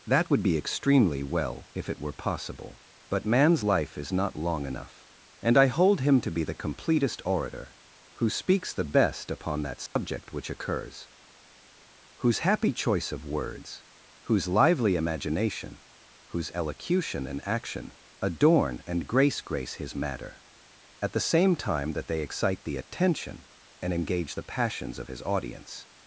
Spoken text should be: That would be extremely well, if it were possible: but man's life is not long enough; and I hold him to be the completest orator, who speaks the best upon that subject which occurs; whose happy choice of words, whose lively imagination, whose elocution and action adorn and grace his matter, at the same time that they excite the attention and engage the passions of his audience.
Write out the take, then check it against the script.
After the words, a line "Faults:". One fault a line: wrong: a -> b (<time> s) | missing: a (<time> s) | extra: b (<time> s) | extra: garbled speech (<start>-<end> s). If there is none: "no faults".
That would be extremely well, if it were possible: but man's life is not long enough; and I hold him to be the completest orator, who speaks the best upon that subject which occurs; whose happy choice of words, whose lively imagination, whose elocution and action adorn and grace grace his matter, at the same time that they excite the attention and engage the passions of his audience.
Faults:
extra: grace (19.4 s)